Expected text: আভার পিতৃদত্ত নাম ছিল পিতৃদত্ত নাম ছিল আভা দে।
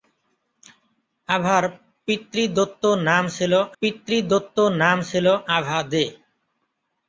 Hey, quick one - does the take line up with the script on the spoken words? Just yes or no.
yes